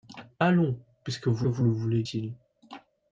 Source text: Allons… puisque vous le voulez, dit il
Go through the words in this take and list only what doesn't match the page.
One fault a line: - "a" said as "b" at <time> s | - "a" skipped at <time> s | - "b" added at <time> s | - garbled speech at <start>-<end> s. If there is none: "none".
- "vous" added at 1.5 s
- "dit" skipped at 2.0 s